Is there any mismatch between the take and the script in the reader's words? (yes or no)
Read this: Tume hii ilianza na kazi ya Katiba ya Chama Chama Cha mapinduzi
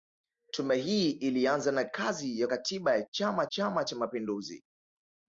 no